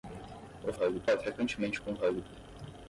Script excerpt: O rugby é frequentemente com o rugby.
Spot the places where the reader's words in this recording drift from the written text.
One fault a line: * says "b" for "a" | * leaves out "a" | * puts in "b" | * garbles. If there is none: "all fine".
all fine